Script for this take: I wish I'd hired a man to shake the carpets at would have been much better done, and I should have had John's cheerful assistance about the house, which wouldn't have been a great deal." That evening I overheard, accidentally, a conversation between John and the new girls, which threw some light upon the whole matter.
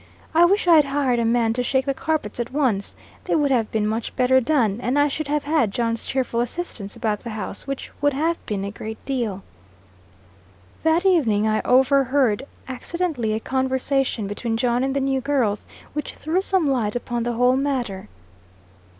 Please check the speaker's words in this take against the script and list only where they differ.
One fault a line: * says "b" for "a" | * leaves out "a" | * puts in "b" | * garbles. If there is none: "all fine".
* puts in "once they"
* says "would" for "wouldn't"